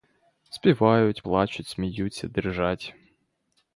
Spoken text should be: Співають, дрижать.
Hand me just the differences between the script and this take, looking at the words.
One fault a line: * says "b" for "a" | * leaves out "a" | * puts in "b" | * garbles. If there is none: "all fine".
* puts in "плачуть сміються"